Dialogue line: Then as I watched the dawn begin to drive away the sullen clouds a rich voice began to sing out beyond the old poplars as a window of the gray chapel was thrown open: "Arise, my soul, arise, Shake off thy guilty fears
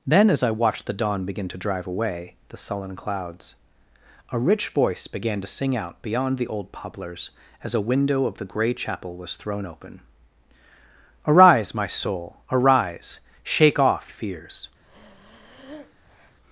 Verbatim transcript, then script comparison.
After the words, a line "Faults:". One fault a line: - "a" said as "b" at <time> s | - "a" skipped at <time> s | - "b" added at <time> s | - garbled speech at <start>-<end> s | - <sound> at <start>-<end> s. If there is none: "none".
Then as I watched the dawn begin to drive away the sullen clouds a rich voice began to sing out beyond the old poplars as a window of the gray chapel was thrown open: "Arise, my soul, arise, Shake off fears
Faults:
- "thy guilty" skipped at 14.1 s
- breath at 14.8-16.4 s